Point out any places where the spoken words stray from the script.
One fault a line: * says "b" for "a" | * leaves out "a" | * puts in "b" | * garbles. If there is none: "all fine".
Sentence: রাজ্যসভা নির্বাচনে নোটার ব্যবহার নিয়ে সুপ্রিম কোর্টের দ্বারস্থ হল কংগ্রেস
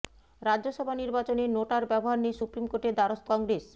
* leaves out "হল"